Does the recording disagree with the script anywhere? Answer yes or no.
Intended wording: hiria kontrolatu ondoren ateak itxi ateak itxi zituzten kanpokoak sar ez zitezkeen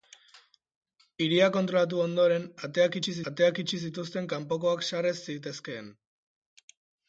no